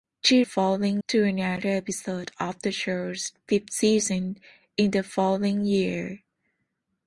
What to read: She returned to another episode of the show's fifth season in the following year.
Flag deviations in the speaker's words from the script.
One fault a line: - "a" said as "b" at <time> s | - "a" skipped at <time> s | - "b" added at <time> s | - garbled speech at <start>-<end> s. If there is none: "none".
- "returned" said as "following" at 0.4 s